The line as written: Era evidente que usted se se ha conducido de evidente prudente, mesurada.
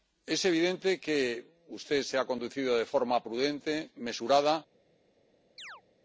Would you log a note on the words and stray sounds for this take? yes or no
yes